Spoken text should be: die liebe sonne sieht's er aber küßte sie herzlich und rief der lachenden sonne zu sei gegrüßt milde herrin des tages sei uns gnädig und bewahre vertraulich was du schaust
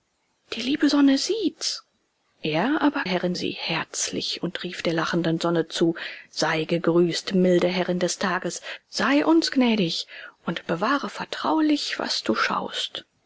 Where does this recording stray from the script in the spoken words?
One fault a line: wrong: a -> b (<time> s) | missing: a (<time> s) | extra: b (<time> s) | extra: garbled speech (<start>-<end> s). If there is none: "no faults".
wrong: küßte -> herrin (3.0 s)